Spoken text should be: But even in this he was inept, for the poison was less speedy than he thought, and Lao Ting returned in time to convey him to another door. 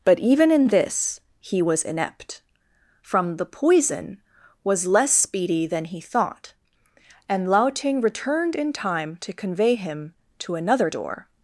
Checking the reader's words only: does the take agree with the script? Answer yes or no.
no